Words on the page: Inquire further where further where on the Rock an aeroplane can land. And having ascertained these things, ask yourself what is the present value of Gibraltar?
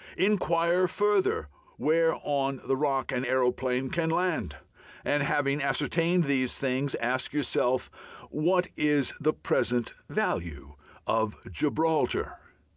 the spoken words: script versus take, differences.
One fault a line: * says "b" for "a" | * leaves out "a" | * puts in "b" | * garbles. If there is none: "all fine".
* leaves out "further where"